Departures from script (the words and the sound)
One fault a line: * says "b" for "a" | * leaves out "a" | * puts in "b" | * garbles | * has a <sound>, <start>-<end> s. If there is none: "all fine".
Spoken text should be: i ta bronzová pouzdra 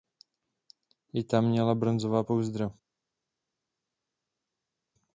* puts in "měla"